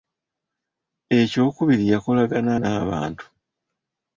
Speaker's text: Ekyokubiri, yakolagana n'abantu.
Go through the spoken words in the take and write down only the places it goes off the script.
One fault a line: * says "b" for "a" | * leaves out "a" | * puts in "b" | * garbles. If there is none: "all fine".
all fine